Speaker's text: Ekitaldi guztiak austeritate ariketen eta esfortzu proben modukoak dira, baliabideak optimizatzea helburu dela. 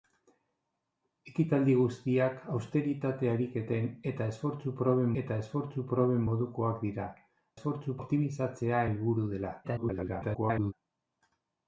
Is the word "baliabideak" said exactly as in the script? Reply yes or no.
no